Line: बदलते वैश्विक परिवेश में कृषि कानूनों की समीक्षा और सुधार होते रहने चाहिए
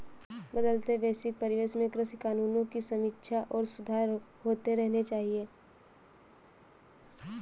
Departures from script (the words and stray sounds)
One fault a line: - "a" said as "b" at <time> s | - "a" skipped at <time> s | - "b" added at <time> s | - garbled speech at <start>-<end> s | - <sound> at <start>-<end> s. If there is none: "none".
none